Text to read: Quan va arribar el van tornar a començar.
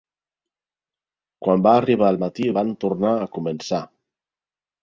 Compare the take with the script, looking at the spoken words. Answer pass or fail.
fail